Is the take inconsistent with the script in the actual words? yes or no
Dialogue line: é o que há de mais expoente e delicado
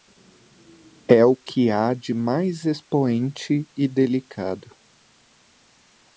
no